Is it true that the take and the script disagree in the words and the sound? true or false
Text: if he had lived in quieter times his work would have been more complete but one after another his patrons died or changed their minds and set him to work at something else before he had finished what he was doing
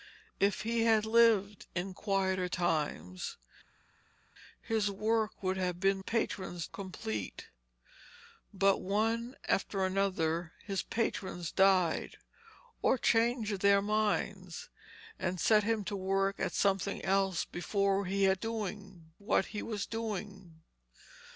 true